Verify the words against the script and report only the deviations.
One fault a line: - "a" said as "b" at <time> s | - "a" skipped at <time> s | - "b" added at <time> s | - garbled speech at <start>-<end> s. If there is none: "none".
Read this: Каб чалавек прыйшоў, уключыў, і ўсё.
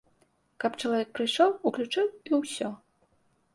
none